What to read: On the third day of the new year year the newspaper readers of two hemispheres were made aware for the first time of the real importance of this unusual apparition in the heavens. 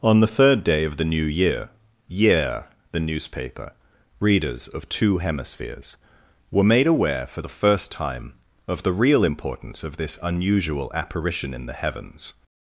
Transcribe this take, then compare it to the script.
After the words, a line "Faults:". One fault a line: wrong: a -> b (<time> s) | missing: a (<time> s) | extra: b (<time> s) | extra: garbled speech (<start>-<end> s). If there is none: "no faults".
On the third day of the new year year the newspaper readers of two hemispheres were made aware for the first time of the real importance of this unusual apparition in the heavens.
Faults:
no faults